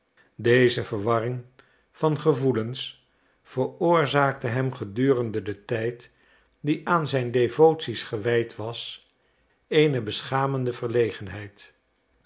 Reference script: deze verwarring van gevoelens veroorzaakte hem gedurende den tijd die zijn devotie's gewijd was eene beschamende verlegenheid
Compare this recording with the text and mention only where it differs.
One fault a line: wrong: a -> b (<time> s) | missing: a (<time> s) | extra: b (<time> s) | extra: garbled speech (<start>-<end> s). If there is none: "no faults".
extra: aan (6.9 s)